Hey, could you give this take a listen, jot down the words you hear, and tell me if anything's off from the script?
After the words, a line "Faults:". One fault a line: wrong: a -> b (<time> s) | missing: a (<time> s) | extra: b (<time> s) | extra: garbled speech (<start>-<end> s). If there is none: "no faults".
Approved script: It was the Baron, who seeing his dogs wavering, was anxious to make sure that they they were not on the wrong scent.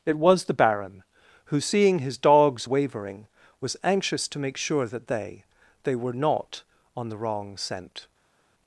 It was the Baron, who seeing his dogs wavering, was anxious to make sure that they they were not on the wrong scent.
Faults:
no faults